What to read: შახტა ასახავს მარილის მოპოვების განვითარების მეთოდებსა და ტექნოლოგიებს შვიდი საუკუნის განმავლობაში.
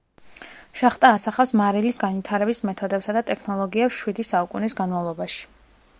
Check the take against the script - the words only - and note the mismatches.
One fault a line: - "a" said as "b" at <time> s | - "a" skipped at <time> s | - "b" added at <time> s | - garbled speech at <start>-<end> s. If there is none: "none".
- "მოპოვების" skipped at 2.0 s